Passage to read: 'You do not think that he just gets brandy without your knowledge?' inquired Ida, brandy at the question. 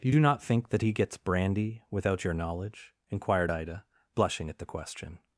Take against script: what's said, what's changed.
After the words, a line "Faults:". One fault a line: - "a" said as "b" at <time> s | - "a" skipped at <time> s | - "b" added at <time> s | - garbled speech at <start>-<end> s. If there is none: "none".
'You do not think that he gets brandy without your knowledge?' inquired Ida, blushing at the question.
Faults:
- "just" skipped at 0.9 s
- "brandy" said as "blushing" at 4.1 s